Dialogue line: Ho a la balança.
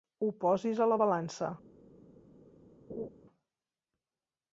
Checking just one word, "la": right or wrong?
right